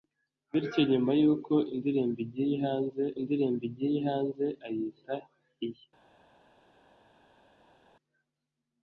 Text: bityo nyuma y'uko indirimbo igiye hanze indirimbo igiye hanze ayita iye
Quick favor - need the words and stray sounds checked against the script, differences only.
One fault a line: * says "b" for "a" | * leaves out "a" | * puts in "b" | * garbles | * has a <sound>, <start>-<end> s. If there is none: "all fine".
all fine